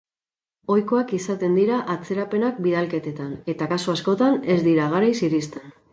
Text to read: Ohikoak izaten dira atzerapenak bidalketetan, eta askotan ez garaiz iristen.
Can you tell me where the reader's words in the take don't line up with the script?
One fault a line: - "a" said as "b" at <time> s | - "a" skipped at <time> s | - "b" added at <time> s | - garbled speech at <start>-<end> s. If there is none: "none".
- "kasu" added at 3.7 s
- "dira" added at 4.7 s